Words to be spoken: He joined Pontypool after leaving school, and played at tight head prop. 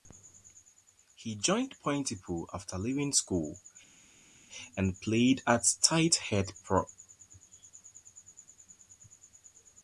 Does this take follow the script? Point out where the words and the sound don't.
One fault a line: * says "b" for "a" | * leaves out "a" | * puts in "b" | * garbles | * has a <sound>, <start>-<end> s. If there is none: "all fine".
all fine